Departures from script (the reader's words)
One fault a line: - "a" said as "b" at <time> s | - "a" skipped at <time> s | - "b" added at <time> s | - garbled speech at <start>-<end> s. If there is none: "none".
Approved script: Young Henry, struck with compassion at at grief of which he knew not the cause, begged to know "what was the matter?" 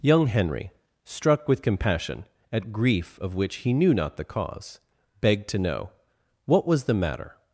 - "at" skipped at 2.7 s